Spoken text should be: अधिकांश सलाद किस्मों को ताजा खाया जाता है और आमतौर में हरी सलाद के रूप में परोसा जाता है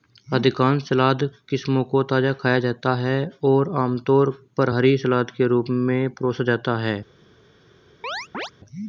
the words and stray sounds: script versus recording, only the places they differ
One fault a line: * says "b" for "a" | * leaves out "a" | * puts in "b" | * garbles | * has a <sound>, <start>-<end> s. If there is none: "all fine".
* says "पर" for "में"
* has a chirp, 8.0-8.5 s